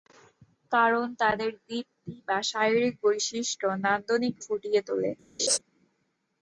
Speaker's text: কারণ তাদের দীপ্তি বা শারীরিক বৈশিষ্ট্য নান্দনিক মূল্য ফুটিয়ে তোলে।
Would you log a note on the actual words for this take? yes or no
yes